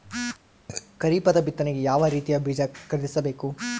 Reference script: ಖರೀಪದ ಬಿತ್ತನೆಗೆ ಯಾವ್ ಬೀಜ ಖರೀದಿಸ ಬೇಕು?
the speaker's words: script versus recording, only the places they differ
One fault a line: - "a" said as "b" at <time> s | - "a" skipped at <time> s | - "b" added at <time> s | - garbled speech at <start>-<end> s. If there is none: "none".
- "ರೀತಿಯ" added at 2.1 s